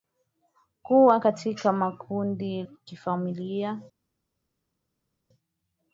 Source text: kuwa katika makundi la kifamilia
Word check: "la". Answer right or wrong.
wrong